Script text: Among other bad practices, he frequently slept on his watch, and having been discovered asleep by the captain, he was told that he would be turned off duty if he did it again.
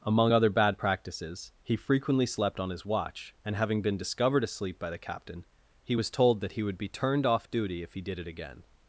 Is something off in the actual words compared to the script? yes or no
no